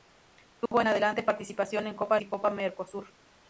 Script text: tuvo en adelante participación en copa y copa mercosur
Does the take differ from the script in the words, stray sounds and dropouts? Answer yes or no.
yes